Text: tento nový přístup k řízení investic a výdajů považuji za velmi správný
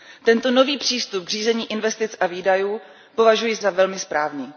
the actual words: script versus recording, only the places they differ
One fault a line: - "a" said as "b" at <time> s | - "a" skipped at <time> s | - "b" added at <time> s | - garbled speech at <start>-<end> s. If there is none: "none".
none